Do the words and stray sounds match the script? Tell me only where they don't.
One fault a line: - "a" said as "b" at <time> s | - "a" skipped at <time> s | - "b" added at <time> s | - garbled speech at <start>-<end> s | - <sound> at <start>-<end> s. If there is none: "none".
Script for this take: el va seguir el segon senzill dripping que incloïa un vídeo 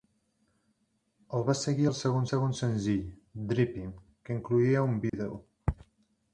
- "segon" added at 2.3 s
- dropout at 5.1-5.1 s